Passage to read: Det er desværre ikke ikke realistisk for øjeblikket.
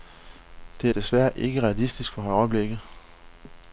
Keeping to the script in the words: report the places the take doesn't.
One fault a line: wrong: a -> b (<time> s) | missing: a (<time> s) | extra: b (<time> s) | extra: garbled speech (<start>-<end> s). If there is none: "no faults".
missing: ikke (1.6 s)